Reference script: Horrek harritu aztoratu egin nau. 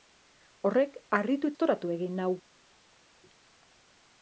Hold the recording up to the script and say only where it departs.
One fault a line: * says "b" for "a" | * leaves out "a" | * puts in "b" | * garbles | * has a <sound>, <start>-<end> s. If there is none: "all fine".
all fine